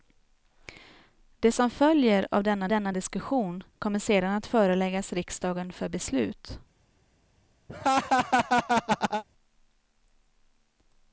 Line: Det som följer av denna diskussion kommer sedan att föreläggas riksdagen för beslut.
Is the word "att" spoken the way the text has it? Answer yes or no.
yes